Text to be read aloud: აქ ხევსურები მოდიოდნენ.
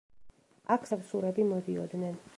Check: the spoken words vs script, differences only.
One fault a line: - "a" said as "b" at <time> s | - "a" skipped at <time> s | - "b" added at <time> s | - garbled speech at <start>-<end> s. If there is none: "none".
none